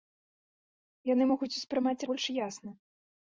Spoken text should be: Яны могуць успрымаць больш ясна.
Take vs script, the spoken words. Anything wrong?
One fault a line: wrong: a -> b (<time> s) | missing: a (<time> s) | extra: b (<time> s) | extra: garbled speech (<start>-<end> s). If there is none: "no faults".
no faults